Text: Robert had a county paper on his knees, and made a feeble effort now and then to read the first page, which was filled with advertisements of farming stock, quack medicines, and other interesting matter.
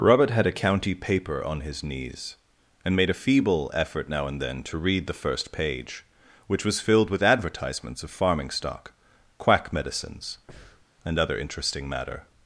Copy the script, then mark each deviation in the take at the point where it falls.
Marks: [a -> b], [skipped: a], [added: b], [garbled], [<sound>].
Robert had a county paper on his knees, and made a feeble effort now and then to read the first page, which was filled with advertisements of farming stock, quack medicines, [breath] and other interesting matter.